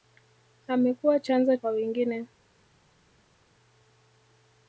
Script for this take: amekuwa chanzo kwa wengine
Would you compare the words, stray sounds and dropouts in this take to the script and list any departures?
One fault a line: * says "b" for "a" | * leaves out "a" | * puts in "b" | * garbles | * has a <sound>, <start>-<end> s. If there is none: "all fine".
all fine